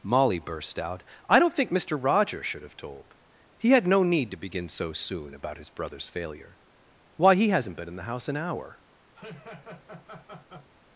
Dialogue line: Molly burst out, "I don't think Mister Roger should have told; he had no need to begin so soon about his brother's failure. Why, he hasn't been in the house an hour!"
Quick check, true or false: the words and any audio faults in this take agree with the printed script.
false